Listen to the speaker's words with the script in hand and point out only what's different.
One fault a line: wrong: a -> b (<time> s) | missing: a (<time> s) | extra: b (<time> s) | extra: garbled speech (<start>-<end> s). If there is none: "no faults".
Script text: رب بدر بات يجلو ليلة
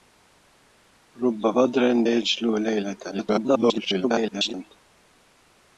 missing: بات (1.8 s)
extra: garbled speech (3.1-4.5 s)